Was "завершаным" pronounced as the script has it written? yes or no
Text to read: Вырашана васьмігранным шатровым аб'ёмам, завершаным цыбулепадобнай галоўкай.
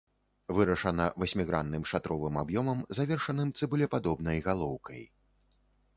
yes